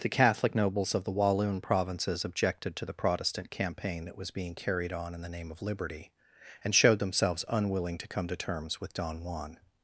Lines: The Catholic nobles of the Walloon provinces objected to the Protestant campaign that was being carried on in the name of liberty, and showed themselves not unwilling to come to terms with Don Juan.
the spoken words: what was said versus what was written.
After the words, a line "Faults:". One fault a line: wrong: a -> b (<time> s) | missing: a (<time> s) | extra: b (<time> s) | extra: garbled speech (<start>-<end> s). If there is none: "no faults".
The Catholic nobles of the Walloon provinces objected to the Protestant campaign that was being carried on in the name of liberty, and showed themselves unwilling to come to terms with Don Juan.
Faults:
missing: not (7.4 s)